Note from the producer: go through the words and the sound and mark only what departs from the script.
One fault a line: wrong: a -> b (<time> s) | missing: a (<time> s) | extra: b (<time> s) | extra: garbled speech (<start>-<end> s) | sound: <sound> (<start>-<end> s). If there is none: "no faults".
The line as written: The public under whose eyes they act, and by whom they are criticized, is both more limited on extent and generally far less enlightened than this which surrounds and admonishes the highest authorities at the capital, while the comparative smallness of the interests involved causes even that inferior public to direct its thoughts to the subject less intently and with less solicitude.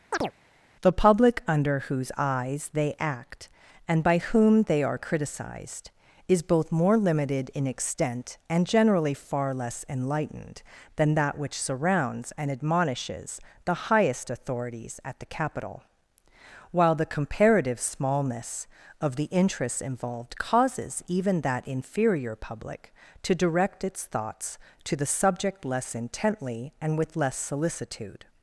sound: chirp (0.1-0.3 s)
wrong: on -> in (7.5 s)
wrong: this -> that (11.1 s)